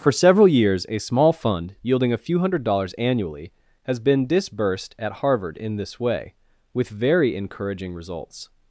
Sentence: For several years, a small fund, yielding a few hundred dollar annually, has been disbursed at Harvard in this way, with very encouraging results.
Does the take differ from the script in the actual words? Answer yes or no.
yes